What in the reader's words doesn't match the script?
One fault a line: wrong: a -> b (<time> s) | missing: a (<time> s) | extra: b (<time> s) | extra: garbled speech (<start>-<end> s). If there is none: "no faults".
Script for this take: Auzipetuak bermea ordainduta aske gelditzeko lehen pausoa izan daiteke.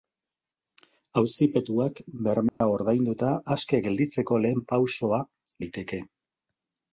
missing: izan (5.2 s)